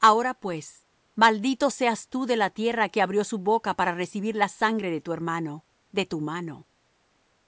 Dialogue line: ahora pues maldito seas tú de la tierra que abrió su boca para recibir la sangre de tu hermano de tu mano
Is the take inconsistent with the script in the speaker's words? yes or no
no